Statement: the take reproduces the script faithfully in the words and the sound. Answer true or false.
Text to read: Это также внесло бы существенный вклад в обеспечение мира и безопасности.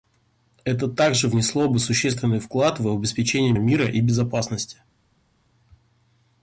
true